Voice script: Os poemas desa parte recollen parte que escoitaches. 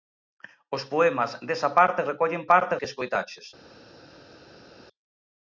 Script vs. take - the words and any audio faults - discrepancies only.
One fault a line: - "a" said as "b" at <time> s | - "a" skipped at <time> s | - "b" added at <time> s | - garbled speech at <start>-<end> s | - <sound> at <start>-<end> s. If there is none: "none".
none